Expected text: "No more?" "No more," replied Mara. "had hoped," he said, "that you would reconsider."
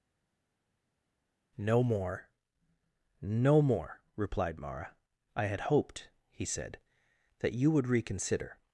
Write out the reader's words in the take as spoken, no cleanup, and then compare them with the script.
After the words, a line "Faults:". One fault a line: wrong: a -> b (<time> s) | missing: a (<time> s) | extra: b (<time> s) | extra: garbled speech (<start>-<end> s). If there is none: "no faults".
"No more?" "No more," replied Mara. "I had hoped," he said, "that you would reconsider."
Faults:
extra: I (5.4 s)